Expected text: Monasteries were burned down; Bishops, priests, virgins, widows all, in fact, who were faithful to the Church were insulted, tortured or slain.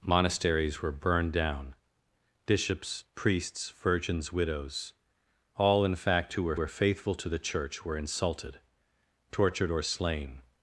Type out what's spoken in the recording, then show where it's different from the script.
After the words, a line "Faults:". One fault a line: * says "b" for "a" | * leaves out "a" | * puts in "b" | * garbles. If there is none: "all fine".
Monasteries were burned down; Bishops, priests, virgins, widows all, in fact, who were were faithful to the Church were insulted, tortured or slain.
Faults:
* puts in "were"